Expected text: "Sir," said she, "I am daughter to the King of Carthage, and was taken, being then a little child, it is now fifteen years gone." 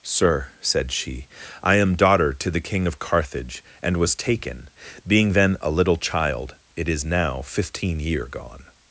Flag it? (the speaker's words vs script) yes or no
yes